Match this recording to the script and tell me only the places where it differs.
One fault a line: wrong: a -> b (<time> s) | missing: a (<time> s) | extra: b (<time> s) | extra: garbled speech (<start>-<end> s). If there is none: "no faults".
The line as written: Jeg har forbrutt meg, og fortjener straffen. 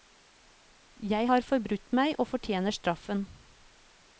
no faults